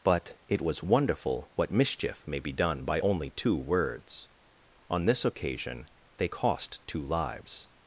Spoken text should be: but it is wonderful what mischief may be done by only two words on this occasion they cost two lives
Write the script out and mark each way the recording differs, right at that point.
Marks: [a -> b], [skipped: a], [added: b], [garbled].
but it [is -> was] wonderful what mischief may be done by only two words on this occasion they cost two lives